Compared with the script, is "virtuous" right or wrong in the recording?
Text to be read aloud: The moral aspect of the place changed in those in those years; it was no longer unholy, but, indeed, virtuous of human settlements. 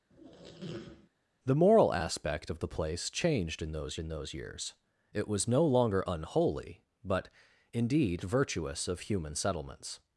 right